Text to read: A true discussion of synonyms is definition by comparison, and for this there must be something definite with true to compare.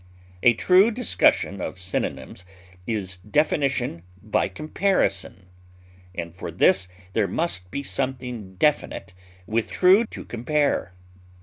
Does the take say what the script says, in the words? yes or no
yes